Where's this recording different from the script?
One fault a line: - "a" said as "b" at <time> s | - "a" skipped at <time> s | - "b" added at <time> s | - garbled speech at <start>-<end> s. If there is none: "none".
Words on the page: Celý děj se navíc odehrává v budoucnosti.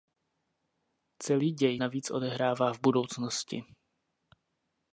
- "se" skipped at 1.8 s